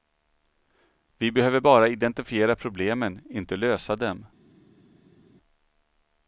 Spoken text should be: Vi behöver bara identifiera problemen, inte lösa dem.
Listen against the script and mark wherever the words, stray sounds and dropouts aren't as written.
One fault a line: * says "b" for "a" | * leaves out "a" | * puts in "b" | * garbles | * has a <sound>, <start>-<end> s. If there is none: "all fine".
all fine